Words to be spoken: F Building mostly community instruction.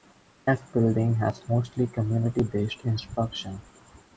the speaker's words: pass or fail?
fail